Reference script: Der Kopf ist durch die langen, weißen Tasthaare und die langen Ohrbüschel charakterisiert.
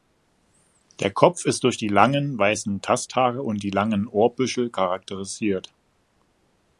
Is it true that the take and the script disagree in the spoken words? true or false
false